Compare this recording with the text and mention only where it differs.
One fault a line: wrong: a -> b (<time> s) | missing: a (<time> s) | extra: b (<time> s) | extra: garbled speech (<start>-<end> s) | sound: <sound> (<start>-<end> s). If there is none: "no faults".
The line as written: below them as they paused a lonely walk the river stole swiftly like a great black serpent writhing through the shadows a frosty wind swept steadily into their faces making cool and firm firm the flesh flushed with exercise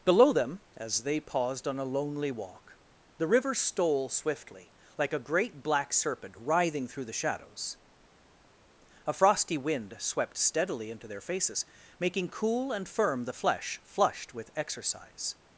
extra: on (1.7 s)
missing: firm (13.3 s)